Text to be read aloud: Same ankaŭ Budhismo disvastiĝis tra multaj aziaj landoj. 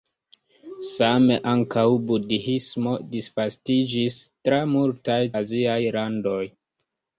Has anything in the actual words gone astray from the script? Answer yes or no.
no